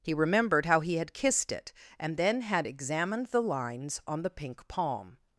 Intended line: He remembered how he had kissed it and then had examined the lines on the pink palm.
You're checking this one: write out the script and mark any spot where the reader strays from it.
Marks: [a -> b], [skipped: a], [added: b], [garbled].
He remembered how he had kissed it and then had examined the lines on the pink palm.